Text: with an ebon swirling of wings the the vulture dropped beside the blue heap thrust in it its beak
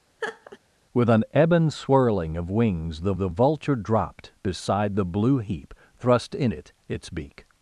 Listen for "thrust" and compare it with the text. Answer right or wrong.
right